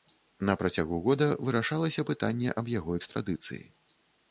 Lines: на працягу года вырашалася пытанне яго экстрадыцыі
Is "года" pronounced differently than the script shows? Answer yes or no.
no